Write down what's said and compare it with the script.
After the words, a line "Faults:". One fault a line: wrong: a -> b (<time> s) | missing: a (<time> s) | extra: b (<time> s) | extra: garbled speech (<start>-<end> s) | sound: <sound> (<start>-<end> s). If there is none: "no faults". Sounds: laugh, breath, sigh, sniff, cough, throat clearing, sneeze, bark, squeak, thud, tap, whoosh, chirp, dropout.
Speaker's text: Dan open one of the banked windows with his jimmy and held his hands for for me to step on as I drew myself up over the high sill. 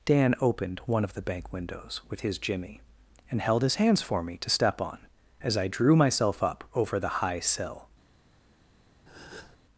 Dan opened one of the bank windows with his jimmy and held his hands for me to step on as I drew myself up over the high sill.
Faults:
wrong: open -> opened (0.4 s)
wrong: banked -> bank (1.2 s)
missing: for (4.2 s)
sound: breath (9.1-9.6 s)